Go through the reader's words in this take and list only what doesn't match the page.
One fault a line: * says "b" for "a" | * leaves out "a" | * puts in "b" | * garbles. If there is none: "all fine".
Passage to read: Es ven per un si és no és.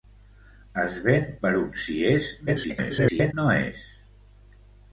* garbles